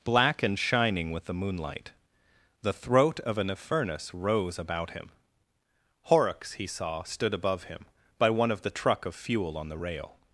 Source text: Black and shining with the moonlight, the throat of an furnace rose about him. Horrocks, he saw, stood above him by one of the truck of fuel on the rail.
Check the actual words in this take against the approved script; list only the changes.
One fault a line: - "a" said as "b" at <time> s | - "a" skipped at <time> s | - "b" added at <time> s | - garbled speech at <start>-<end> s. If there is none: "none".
none